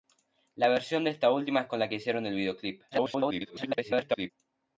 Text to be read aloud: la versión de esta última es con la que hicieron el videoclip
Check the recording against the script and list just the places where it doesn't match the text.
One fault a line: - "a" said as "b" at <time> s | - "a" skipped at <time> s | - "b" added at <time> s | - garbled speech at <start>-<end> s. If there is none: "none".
- garbled speech at 2.9-4.3 s